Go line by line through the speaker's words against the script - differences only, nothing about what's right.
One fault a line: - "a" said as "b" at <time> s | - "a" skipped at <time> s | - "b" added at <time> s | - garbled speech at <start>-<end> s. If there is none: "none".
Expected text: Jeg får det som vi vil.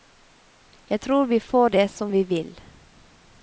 - "tror vi" added at 1.0 s